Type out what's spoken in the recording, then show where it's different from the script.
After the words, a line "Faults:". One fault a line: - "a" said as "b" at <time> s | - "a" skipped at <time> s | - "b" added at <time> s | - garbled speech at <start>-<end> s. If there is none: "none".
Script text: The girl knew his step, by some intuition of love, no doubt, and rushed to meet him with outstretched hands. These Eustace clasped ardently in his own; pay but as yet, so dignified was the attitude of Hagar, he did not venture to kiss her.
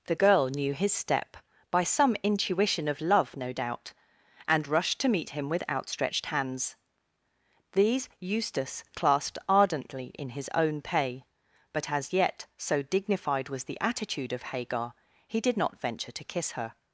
The girl knew his step, by some intuition of love, no doubt, and rushed to meet him with outstretched hands. These Eustace clasped ardently in his own; pay but as yet, so dignified was the attitude of Hagar, he did not venture to kiss her.
Faults:
none